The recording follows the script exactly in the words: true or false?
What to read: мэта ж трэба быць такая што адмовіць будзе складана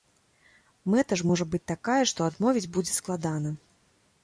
false